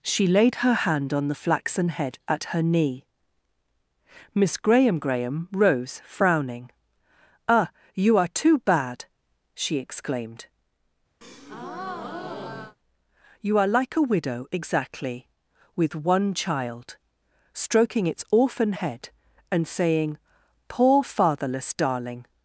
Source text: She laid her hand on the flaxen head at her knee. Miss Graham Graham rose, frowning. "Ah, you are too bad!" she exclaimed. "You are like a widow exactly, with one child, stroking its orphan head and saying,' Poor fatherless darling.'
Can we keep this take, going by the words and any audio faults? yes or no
no